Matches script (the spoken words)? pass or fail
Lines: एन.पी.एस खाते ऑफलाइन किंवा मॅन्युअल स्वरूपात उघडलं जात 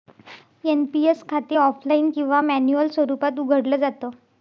pass